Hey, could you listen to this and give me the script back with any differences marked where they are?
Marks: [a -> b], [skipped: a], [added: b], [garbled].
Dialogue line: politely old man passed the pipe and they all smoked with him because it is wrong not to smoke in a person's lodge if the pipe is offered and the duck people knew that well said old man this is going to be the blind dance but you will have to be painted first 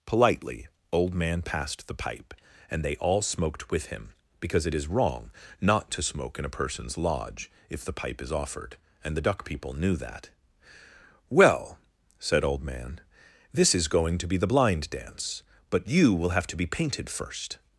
politely old man passed the pipe and they all smoked with him because it is wrong not to smoke in a person's lodge if the pipe is offered and the duck people knew that well said old man this is going to be the blind dance but you will have to be painted first